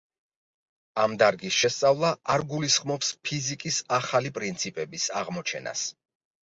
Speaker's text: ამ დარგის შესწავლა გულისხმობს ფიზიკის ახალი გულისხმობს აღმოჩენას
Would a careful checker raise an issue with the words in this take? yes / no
yes